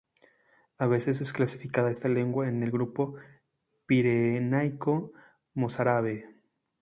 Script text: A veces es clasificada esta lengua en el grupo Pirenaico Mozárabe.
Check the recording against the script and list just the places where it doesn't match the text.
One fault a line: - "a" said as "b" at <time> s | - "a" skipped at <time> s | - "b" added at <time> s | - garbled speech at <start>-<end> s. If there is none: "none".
none